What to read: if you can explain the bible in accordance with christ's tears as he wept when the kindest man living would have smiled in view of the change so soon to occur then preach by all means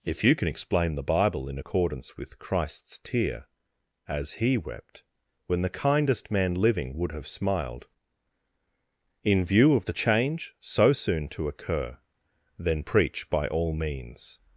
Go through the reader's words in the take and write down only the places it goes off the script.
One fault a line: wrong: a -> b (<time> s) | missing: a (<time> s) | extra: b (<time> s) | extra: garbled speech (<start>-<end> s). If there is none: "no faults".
wrong: tears -> tear (3.0 s)